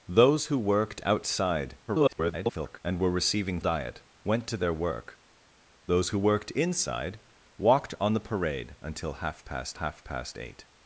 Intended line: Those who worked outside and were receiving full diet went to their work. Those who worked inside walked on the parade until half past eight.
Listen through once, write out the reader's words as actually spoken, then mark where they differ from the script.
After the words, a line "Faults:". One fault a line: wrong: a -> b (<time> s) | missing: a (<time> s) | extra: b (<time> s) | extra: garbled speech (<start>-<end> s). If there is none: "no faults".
Those who worked outside [garbled] and were receiving diet went to their work. Those who worked inside walked on the parade until half past half past eight.
Faults:
extra: garbled speech (1.9-2.8 s)
missing: full (3.6 s)
extra: half past (9.7 s)